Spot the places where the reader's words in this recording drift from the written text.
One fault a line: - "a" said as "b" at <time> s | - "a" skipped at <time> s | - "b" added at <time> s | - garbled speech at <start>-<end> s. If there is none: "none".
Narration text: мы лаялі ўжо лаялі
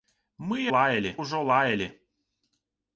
none